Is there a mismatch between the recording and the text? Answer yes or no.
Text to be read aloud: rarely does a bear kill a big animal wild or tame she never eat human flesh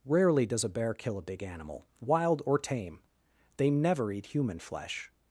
yes